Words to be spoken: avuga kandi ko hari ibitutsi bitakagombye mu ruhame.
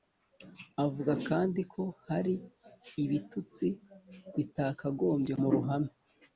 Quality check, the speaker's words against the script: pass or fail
pass